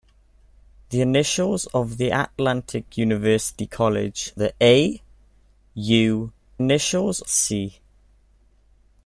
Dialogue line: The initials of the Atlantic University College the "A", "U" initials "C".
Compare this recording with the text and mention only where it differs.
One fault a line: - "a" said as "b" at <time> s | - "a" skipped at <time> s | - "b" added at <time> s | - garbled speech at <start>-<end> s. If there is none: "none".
none